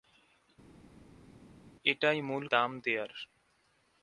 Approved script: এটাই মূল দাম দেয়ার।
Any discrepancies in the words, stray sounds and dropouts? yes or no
no